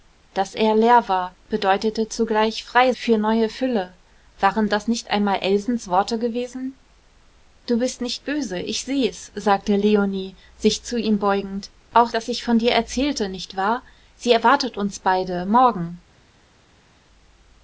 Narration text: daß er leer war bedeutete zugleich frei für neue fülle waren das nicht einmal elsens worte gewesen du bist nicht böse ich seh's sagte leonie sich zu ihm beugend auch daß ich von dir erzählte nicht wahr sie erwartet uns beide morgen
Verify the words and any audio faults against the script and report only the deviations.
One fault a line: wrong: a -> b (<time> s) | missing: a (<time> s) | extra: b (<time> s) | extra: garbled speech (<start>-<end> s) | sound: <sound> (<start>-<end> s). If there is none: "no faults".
no faults